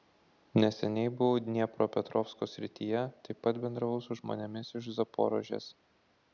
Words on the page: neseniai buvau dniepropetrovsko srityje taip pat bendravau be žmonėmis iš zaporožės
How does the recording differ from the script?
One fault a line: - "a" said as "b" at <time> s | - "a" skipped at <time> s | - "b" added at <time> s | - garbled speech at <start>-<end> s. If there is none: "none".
- "be" said as "su" at 4.1 s